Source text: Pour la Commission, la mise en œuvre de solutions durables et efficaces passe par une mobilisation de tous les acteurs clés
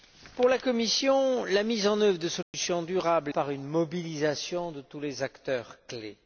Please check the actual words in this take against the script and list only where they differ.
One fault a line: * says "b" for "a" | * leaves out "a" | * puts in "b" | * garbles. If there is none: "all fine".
* leaves out "et efficaces passe"